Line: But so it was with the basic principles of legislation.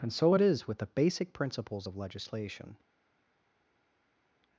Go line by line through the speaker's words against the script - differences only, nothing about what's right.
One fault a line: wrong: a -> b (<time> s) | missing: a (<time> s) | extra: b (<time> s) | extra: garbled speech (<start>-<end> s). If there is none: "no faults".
wrong: But -> And (0.0 s)
wrong: was -> is (0.4 s)